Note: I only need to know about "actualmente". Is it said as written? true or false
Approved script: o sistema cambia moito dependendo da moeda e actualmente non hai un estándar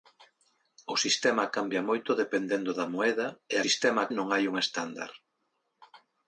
false